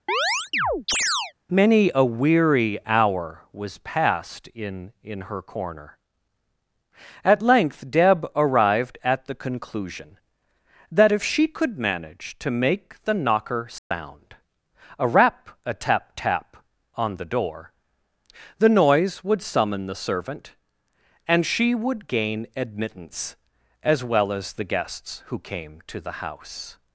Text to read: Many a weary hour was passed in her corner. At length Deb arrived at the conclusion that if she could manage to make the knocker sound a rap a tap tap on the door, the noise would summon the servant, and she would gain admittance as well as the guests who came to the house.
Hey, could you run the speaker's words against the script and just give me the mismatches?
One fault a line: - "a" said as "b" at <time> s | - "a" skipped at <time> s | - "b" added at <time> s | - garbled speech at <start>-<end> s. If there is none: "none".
- "in" added at 5.0 s